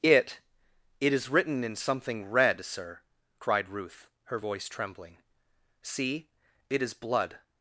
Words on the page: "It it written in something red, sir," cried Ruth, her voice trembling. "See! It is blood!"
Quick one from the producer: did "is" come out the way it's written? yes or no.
yes